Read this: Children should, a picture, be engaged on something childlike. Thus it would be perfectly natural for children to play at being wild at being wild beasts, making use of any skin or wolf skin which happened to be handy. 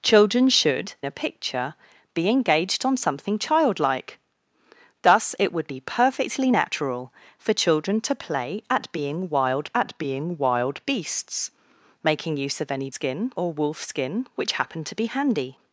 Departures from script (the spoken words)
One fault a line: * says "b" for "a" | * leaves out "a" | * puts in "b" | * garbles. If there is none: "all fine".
all fine